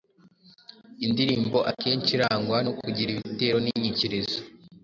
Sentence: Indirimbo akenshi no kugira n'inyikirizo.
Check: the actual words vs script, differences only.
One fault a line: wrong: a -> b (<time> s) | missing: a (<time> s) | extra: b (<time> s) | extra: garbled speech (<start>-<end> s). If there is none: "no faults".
extra: irangwa (2.2 s)
extra: ibitero (3.1 s)